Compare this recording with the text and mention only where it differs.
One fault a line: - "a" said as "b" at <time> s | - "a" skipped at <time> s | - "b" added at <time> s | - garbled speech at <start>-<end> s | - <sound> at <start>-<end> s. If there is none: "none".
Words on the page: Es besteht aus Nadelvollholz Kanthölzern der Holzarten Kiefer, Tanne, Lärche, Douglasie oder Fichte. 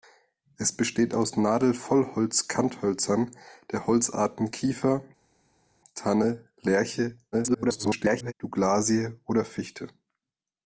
- garbled speech at 7.3-8.3 s